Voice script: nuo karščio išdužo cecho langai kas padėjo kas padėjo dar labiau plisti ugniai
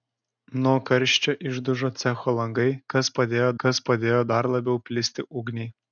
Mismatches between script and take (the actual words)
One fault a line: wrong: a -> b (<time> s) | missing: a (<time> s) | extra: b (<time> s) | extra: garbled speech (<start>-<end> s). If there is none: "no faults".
no faults